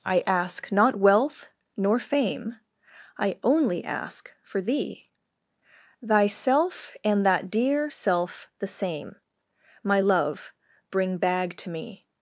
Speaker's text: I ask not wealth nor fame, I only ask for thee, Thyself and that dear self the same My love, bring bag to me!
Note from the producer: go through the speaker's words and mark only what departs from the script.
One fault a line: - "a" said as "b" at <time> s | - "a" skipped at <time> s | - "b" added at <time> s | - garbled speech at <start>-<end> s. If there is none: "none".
none